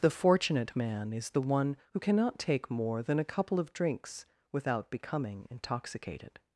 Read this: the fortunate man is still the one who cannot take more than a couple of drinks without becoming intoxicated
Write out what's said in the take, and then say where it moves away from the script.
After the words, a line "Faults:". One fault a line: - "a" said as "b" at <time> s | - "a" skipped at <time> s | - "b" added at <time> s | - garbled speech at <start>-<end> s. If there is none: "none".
the fortunate man is the one who cannot take more than a couple of drinks without becoming intoxicated
Faults:
- "still" skipped at 1.3 s